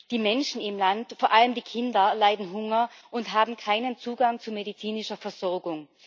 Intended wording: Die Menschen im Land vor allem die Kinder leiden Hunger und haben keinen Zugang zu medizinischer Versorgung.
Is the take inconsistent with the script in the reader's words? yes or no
no